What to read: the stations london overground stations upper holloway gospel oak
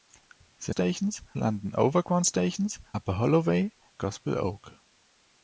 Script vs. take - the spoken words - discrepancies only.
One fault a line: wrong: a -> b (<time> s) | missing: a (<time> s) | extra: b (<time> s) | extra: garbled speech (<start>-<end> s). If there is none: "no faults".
no faults